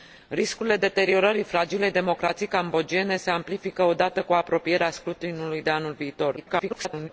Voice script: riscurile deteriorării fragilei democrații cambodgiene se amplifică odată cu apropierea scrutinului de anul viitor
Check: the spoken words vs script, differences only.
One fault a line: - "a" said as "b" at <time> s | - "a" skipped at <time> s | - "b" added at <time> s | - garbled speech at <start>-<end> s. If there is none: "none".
- garbled speech at 6.4-7.1 s